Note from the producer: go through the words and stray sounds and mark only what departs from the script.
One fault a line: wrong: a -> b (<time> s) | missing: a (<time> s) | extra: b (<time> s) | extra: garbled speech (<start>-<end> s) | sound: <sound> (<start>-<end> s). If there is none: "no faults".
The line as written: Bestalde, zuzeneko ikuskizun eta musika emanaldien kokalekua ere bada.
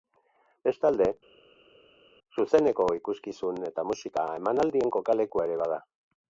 no faults